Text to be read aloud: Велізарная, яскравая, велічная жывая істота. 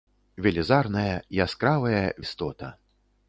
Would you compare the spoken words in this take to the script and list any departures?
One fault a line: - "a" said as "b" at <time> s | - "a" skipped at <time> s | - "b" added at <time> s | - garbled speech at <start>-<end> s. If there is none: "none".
- "велічная жывая" skipped at 2.0 s